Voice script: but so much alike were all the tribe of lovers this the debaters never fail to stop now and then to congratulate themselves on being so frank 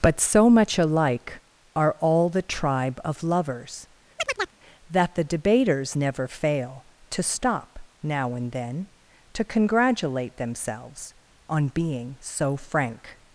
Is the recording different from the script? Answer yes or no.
yes